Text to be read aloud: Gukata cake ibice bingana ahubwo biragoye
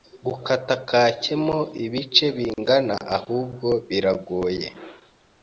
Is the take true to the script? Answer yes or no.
no